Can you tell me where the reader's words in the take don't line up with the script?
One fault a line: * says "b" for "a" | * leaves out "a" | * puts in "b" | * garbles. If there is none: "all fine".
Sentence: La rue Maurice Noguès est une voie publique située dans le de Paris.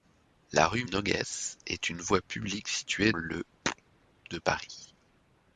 * leaves out "Maurice"
* leaves out "dans"